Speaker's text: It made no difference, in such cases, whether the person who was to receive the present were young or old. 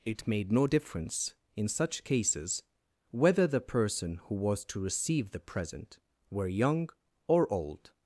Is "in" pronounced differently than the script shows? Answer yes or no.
no